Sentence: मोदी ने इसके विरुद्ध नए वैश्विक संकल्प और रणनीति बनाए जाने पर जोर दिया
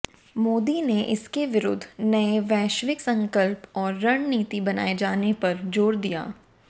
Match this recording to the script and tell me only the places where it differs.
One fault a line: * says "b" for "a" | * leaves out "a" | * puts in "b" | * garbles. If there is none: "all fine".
all fine